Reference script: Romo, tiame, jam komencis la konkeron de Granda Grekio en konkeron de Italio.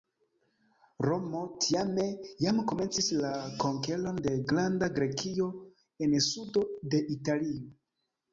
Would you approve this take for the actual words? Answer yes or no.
no